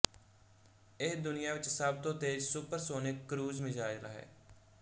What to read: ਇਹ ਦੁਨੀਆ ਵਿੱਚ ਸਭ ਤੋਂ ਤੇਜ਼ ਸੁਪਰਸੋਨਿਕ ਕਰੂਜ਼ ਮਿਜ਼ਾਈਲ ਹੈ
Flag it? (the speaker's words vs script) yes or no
no